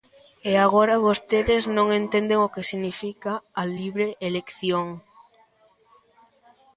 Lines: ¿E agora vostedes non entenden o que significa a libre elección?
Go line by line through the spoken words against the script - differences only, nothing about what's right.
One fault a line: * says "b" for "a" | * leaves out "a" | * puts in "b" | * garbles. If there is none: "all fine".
all fine